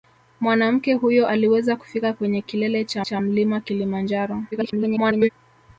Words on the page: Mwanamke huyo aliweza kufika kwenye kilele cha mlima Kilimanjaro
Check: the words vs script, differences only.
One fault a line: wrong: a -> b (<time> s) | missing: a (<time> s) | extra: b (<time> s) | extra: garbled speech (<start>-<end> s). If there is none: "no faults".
extra: cha (3.0 s)
extra: garbled speech (4.5-5.3 s)